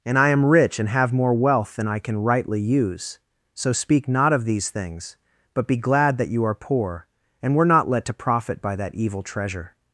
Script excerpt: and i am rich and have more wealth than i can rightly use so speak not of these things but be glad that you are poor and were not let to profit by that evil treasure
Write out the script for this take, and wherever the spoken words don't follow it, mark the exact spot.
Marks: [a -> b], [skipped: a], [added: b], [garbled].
and i am rich and have more wealth than i can rightly use so speak not of these things but be glad that you are poor and were not let to profit by that evil treasure